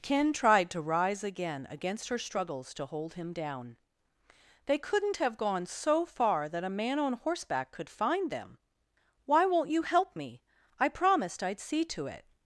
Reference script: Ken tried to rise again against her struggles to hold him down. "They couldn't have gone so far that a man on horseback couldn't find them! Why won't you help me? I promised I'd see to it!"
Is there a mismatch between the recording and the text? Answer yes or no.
yes